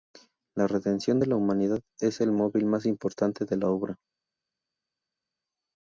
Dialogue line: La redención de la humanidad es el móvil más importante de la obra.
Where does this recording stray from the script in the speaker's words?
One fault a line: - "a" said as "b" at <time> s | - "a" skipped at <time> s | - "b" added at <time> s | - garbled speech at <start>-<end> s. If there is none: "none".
none